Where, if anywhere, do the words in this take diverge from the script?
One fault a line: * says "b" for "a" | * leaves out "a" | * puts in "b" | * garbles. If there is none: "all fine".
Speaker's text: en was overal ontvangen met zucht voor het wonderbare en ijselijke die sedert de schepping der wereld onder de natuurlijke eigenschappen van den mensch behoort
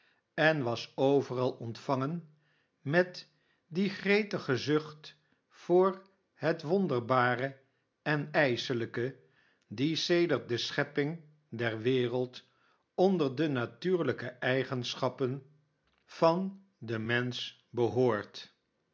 * puts in "die gretige"